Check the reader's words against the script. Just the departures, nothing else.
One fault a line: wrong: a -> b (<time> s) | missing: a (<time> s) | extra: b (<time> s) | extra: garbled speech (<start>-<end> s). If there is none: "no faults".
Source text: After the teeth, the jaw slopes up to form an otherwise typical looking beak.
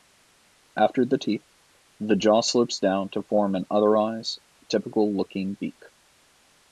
wrong: up -> down (2.8 s)